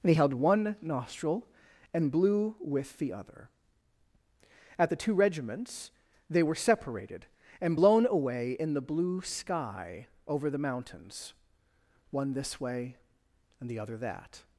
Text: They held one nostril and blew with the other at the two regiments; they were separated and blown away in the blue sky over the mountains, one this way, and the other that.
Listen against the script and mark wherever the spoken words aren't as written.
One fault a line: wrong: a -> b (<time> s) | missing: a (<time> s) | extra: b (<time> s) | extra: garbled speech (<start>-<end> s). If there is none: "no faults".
no faults